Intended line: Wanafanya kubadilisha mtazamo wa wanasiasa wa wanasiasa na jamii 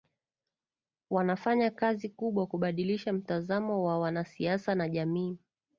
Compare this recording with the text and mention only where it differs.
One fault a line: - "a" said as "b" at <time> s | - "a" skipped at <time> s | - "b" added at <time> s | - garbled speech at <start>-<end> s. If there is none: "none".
- "kazi kubwa" added at 1.7 s
- "wa wanasiasa" skipped at 4.8 s